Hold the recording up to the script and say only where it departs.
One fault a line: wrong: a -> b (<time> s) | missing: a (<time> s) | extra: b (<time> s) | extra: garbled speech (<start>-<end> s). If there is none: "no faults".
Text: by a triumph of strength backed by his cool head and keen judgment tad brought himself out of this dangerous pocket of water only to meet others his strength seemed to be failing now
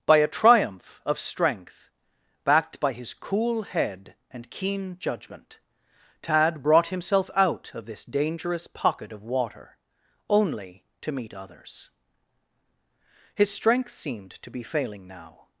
no faults